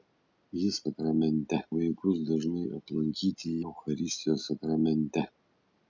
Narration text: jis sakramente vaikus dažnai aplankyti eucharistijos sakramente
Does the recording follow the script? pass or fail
pass